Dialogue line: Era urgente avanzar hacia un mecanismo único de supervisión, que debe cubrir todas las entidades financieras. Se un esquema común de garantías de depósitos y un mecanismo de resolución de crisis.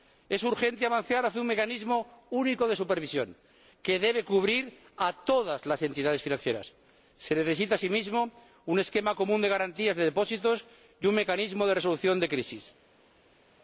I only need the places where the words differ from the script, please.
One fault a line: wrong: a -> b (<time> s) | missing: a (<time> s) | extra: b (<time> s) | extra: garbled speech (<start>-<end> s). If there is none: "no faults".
wrong: Era -> Es (0.3 s)
extra: a (5.0 s)
extra: necesita asimismo (7.3 s)